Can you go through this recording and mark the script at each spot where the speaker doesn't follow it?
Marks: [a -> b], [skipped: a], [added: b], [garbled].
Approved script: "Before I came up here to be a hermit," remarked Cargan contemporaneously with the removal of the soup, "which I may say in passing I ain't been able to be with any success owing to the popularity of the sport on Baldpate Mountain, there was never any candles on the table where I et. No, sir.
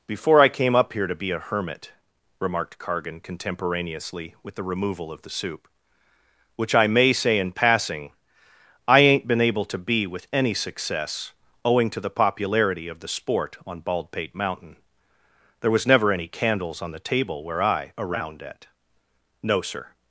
"Before I came up here to be a hermit," remarked Cargan contemporaneously with the removal of the soup, "which I may say in passing I ain't been able to be with any success owing to the popularity of the sport on Baldpate Mountain, there was never any candles on the table where I [et. -> around at] No, sir.